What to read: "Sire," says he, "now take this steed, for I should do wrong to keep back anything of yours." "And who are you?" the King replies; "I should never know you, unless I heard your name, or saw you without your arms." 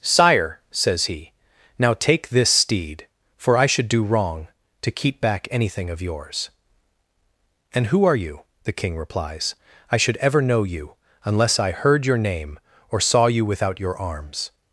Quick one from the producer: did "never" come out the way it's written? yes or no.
no